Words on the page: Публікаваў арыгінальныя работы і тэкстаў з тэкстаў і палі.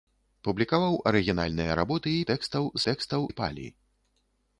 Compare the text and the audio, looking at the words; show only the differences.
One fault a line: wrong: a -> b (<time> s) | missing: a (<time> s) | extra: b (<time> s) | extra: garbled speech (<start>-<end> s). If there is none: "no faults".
no faults